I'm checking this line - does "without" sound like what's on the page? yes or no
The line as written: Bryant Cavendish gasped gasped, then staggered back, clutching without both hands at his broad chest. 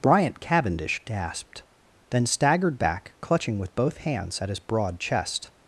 no